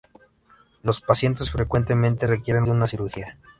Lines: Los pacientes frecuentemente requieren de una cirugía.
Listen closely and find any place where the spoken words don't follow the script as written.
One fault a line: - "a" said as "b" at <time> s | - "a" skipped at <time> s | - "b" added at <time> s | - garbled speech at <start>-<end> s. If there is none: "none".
none